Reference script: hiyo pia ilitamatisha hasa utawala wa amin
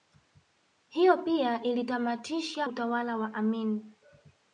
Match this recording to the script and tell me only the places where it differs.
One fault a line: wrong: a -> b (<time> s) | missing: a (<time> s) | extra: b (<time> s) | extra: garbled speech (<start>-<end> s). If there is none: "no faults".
missing: hasa (2.7 s)